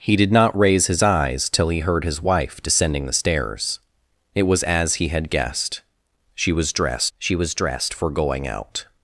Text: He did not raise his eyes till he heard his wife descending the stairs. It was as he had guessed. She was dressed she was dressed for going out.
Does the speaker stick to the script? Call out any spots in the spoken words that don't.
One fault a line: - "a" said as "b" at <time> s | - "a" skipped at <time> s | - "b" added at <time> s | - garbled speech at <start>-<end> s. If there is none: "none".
none